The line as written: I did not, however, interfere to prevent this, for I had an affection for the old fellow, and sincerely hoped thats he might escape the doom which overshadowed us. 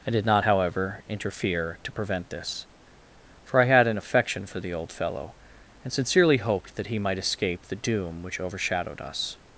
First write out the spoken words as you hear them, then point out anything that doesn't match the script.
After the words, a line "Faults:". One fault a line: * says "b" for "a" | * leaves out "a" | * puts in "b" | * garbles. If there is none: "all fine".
I did not, however, interfere to prevent this, for I had an affection for the old fellow, and sincerely hoped that he might escape the doom which overshadowed us.
Faults:
* says "that" for "thats"